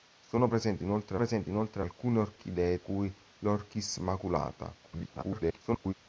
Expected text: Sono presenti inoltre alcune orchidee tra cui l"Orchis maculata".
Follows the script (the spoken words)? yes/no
no